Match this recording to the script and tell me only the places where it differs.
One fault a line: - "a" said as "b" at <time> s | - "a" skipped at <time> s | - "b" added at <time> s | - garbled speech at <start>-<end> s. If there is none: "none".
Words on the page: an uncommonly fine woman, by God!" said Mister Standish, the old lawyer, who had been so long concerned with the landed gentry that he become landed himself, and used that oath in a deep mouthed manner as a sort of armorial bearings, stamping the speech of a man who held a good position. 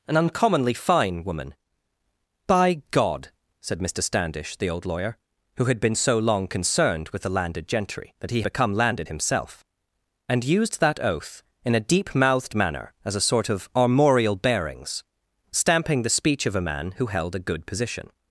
none